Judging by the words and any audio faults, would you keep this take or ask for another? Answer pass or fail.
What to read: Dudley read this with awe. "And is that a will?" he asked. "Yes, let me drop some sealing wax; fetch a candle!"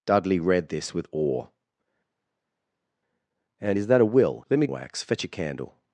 fail